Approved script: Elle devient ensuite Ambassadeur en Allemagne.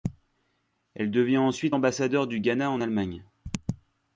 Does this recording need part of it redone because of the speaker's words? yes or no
yes